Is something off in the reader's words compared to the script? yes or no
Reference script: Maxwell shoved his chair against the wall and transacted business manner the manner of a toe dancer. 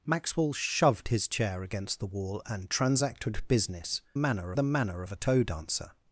no